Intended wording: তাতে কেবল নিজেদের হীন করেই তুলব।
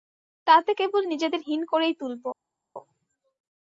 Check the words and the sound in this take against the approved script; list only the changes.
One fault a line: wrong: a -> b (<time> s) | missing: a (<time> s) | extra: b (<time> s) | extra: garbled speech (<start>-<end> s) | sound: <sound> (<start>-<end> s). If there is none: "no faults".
no faults